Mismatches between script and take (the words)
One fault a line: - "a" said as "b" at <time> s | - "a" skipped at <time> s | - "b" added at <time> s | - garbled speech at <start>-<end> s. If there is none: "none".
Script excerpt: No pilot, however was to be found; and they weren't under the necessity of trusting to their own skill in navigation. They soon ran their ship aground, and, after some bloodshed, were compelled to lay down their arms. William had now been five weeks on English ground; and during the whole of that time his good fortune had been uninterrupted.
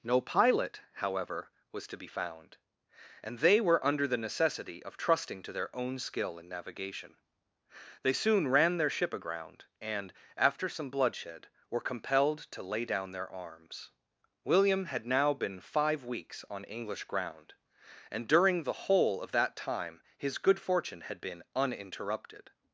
- "weren't" said as "were" at 3.6 s